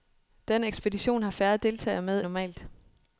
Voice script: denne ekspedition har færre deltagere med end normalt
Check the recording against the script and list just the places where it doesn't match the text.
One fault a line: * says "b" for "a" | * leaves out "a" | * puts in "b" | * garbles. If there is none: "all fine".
* leaves out "end"